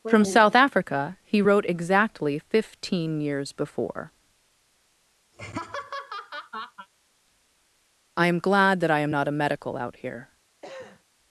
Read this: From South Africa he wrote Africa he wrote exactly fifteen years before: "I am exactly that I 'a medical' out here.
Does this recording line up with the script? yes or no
no